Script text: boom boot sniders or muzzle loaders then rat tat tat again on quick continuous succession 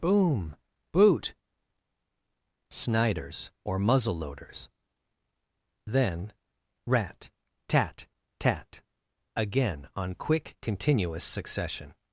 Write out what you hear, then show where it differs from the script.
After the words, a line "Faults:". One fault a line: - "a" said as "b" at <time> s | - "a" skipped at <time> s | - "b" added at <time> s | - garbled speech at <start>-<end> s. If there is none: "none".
boom boot sniders or muzzle loaders then rat tat tat again on quick continuous succession
Faults:
none